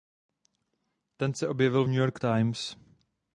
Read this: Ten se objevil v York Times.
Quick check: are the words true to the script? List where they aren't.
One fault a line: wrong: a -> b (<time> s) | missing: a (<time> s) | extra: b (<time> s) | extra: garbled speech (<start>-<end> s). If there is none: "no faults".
extra: New (1.9 s)